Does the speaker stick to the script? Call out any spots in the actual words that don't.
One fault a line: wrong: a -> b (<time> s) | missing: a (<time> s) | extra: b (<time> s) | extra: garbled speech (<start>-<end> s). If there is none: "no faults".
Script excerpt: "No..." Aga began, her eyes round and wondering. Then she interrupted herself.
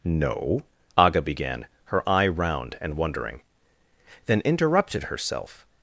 wrong: eyes -> eye (2.1 s)
missing: she (4.4 s)